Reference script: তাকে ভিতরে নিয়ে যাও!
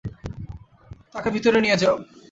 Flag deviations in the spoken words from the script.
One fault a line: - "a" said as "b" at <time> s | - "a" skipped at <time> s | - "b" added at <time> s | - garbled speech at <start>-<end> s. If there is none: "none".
none